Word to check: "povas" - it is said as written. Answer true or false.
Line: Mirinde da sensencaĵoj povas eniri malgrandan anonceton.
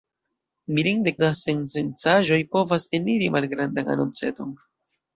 true